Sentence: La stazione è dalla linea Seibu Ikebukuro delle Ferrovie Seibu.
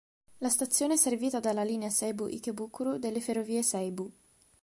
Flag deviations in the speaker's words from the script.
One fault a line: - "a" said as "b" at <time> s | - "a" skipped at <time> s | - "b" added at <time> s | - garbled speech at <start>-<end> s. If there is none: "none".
- "servita" added at 1.0 s